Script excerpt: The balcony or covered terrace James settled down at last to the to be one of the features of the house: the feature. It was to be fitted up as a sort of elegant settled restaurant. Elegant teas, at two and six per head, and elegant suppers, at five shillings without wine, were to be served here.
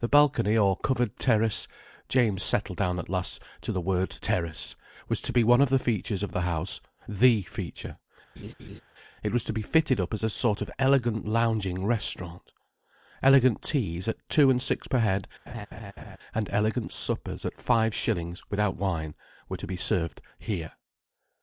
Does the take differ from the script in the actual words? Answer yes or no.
yes